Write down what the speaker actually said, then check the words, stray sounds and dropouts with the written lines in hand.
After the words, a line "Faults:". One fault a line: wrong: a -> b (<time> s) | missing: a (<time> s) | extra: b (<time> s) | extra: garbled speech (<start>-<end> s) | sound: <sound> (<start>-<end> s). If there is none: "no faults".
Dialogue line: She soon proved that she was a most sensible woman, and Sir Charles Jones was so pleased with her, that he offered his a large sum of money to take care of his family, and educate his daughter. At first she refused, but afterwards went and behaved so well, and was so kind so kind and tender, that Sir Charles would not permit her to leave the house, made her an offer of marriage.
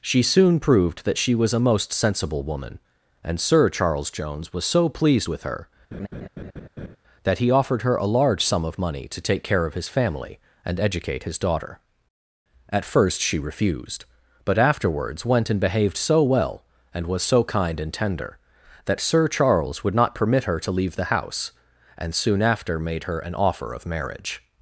She soon proved that she was a most sensible woman, and Sir Charles Jones was so pleased with her, that he offered her a large sum of money to take care of his family, and educate his daughter. At first she refused, but afterwards went and behaved so well, and was so kind and tender, that Sir Charles would not permit her to leave the house, and soon after made her an offer of marriage.
Faults:
sound: laugh (5.9-7.0 s)
wrong: his -> her (7.8 s)
missing: so kind (17.8 s)
extra: and soon after (22.0 s)